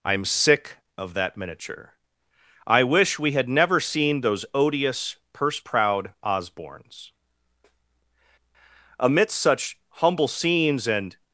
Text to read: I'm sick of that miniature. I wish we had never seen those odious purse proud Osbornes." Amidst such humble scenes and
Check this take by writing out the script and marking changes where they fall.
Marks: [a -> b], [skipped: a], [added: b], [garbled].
I'm sick of that miniature. I wish we had never seen those odious purse proud Osbornes." Amidst such humble scenes and